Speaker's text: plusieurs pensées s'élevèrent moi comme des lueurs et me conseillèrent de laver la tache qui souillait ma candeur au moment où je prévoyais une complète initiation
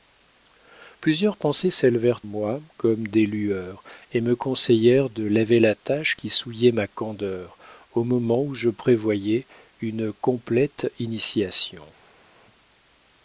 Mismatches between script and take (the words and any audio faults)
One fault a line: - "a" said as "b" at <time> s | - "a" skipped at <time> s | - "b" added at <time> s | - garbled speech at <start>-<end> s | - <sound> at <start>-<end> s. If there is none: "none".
none